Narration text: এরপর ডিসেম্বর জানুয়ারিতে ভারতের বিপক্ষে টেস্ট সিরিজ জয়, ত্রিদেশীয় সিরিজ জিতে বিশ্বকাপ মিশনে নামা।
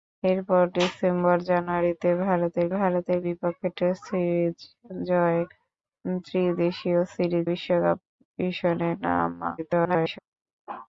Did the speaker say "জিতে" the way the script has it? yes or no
no